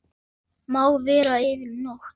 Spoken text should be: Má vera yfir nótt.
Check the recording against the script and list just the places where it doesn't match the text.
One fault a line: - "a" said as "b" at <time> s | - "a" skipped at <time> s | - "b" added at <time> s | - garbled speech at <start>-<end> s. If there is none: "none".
none